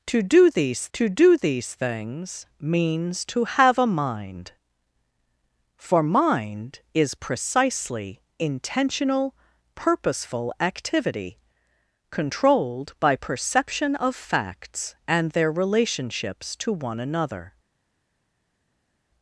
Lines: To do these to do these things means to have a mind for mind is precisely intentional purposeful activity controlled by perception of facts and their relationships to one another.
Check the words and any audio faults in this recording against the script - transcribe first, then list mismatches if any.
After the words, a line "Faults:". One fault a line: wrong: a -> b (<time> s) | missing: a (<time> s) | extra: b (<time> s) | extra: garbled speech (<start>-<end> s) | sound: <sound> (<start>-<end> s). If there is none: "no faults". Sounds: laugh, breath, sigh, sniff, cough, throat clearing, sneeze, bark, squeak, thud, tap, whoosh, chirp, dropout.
To do these to do these things means to have a mind for mind is precisely intentional purposeful activity controlled by perception of facts and their relationships to one another.
Faults:
no faults